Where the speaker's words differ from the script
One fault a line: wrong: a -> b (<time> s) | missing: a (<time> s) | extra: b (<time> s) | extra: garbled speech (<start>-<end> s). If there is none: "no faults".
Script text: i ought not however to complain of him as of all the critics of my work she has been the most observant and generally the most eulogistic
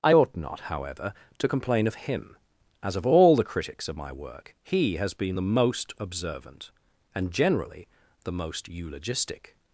wrong: she -> he (4.6 s)